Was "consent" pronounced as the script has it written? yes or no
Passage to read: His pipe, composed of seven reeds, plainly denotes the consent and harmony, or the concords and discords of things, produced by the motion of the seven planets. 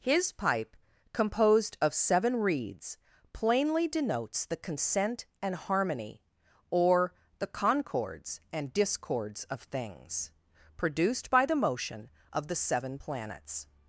yes